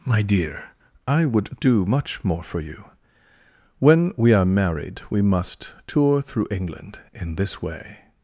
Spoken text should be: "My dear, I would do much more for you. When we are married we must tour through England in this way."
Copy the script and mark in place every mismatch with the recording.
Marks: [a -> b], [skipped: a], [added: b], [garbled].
"My dear, I would do much more for you. When we are married we must tour through England in this way."